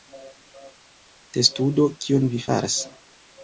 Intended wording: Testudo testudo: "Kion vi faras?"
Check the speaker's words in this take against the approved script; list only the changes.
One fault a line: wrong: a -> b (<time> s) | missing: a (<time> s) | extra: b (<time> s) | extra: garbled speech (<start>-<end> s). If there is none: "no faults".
missing: testudo (1.9 s)